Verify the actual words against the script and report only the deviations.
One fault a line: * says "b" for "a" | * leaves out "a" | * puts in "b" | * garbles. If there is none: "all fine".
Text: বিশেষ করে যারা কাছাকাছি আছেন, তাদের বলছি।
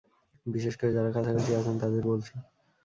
all fine